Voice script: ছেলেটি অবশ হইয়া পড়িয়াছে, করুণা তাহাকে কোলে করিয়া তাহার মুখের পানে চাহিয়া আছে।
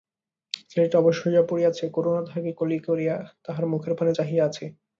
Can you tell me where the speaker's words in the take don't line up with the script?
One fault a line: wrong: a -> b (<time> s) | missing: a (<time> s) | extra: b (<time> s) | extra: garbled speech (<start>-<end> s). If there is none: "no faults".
no faults